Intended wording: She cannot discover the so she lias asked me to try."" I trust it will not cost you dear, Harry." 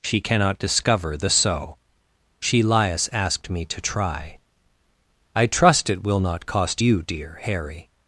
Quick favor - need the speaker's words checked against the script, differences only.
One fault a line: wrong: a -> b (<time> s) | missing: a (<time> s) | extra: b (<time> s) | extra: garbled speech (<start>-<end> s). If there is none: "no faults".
no faults